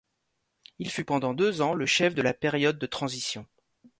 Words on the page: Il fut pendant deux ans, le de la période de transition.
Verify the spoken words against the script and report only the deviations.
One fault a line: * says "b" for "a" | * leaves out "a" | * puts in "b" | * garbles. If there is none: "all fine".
* puts in "chef"